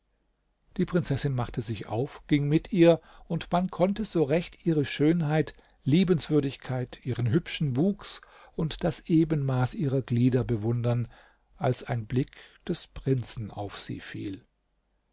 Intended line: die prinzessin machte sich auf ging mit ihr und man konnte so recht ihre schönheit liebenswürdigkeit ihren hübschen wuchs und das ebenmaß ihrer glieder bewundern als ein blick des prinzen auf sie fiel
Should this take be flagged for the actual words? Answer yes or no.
no